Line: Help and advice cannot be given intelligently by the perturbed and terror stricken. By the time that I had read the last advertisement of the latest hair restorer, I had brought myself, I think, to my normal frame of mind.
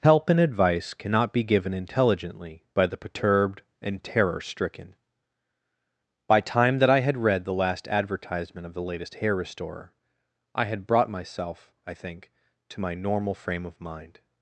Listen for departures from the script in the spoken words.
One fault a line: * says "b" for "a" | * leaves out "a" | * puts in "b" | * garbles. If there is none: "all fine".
* leaves out "the"